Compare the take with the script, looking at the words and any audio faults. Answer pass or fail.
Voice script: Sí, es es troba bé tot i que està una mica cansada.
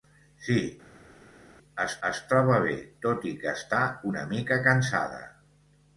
pass